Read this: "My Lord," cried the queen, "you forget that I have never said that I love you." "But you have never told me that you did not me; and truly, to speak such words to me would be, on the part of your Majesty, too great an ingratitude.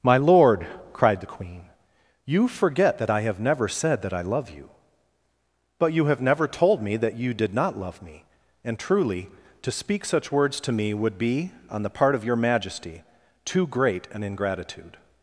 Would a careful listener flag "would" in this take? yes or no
no